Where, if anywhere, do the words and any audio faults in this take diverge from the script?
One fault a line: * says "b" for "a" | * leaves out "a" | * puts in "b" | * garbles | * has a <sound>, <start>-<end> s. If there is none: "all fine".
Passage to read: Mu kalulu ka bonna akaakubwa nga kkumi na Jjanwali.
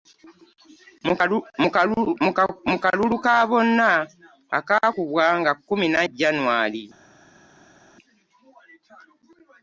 all fine